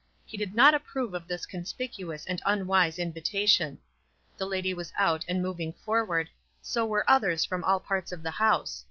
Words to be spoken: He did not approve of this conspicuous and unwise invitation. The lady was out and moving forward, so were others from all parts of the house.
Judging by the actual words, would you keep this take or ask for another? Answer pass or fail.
pass